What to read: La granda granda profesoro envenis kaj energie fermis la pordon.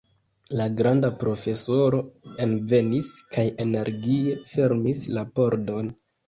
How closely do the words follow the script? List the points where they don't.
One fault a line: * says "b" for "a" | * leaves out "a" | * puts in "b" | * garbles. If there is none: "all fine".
* leaves out "granda"